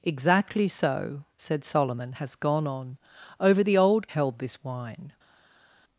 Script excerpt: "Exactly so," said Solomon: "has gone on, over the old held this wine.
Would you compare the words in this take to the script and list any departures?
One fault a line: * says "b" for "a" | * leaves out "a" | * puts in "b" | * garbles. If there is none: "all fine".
all fine